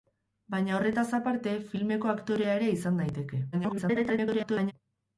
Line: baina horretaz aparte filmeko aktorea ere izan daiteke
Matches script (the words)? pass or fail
fail